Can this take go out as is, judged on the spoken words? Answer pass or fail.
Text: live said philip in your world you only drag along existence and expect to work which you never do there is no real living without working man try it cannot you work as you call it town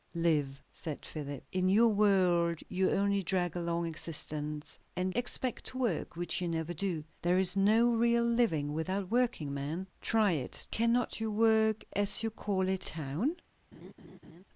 pass